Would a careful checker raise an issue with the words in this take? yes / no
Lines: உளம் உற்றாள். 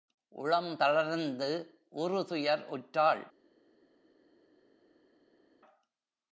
yes